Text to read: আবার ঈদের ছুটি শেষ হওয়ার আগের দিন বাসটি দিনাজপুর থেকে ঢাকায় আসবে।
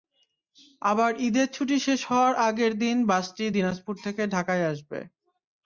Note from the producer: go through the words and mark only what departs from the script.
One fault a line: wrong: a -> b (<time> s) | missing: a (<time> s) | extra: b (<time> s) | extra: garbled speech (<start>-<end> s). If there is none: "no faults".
no faults